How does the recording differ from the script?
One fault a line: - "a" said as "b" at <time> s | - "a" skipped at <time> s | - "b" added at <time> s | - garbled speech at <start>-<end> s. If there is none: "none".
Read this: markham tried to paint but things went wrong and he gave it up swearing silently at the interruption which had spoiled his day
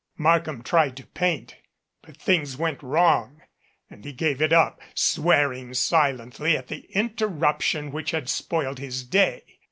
none